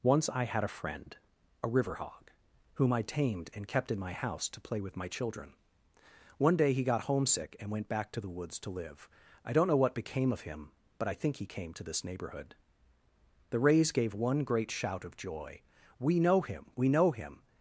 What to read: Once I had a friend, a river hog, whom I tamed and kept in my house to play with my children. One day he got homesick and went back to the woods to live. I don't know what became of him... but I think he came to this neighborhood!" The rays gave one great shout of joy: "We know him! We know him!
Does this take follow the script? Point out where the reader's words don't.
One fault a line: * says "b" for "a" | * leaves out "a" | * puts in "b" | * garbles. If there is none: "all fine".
all fine